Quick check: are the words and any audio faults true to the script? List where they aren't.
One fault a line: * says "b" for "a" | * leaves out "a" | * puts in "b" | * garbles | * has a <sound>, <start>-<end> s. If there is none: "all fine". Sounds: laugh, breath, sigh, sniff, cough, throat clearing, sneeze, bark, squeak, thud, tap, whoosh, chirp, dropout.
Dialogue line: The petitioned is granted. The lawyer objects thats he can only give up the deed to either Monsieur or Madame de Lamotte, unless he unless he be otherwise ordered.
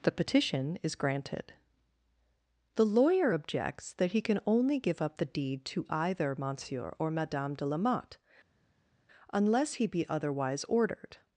* says "petition" for "petitioned"
* says "that" for "thats"
* leaves out "unless he"